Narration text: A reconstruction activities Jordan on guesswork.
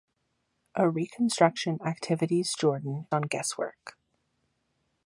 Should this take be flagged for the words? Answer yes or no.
no